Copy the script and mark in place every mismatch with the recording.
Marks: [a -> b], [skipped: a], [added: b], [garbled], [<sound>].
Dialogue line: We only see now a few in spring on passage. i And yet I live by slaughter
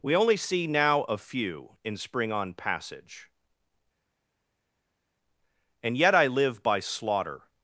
We only see now a few in spring on passage. [skipped: i] And yet I live by slaughter